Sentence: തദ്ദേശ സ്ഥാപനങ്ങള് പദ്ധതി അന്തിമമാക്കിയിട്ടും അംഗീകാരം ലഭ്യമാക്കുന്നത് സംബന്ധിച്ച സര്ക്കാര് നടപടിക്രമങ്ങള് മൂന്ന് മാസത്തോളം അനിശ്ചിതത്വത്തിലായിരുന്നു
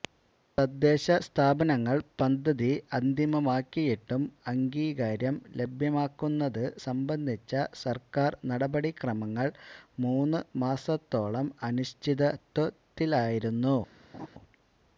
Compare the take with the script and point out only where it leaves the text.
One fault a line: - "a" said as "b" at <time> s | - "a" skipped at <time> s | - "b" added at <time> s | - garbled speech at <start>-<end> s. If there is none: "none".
none